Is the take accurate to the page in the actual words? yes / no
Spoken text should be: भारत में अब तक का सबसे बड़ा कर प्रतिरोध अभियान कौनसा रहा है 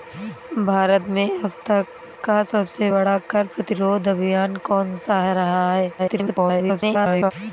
no